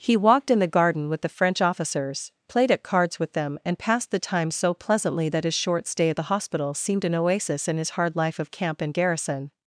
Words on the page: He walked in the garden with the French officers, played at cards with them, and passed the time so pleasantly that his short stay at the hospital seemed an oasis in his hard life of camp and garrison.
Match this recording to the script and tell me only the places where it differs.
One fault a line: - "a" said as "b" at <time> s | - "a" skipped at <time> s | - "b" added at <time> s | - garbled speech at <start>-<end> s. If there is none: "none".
none